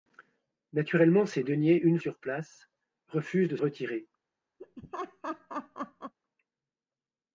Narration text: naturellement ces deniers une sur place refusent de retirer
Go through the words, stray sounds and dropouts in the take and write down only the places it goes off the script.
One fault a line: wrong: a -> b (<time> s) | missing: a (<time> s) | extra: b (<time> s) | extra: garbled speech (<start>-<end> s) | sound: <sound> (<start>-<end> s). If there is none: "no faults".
sound: laugh (4.6-6.1 s)